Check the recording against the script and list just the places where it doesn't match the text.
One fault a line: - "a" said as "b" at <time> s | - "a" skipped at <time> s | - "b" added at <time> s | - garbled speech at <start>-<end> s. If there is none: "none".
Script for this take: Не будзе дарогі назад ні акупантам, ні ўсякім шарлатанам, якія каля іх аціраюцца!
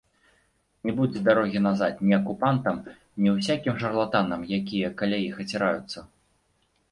none